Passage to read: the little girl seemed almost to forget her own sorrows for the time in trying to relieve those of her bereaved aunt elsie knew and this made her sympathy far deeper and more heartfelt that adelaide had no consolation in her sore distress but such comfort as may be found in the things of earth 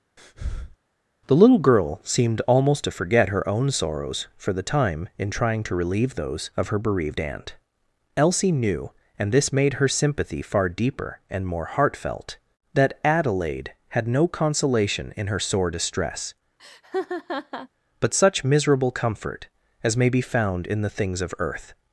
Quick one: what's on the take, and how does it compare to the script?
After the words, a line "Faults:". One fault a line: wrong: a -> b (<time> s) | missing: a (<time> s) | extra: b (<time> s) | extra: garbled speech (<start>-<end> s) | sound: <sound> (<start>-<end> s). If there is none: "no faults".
the little girl seemed almost to forget her own sorrows for the time in trying to relieve those of her bereaved aunt elsie knew and this made her sympathy far deeper and more heartfelt that adelaide had no consolation in her sore distress but such miserable comfort as may be found in the things of earth
Faults:
sound: breath (0.2-0.8 s)
sound: laugh (16.6-17.7 s)
extra: miserable (18.4 s)